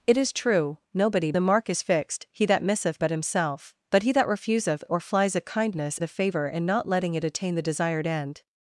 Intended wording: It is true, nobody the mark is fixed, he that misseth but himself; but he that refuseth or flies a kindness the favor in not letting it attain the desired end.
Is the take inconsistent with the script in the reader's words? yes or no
no